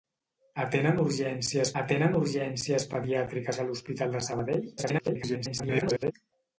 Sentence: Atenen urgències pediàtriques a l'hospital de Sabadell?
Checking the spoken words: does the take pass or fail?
fail